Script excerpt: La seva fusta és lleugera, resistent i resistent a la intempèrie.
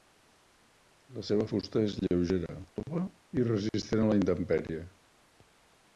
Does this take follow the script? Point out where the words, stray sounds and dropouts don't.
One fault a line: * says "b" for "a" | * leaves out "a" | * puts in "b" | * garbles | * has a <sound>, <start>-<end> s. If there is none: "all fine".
* says "tova" for "resistent"